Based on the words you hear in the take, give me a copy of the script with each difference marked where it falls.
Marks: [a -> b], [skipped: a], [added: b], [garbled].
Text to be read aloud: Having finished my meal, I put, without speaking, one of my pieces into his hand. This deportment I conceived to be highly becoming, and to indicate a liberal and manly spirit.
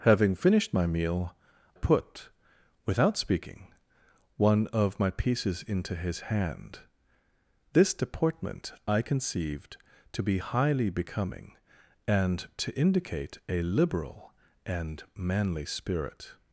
Having finished my meal, [skipped: I] put, without speaking, one of my pieces into his hand. This deportment I conceived to be highly becoming, and to indicate a liberal and manly spirit.